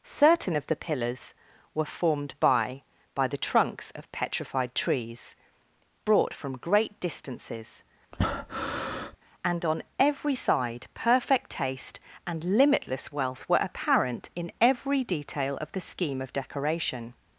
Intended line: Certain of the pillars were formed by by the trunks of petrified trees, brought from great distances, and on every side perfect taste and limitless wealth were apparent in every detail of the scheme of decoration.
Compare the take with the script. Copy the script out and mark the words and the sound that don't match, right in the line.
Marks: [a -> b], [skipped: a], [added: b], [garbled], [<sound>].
Certain of the pillars were formed by by the trunks of petrified trees, brought from great distances, [breath] and on every side perfect taste and limitless wealth were apparent in every detail of the scheme of decoration.